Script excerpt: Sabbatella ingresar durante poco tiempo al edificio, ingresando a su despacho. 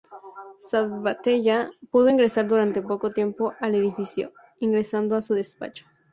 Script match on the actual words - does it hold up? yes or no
no